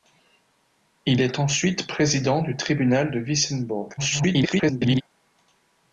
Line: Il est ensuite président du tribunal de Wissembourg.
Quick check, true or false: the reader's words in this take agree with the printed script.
false